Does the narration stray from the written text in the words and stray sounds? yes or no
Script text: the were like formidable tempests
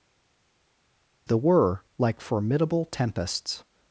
no